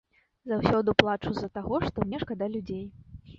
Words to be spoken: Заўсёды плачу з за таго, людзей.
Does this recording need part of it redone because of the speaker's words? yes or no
yes